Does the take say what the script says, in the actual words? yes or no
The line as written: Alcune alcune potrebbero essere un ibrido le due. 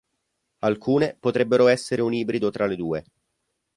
no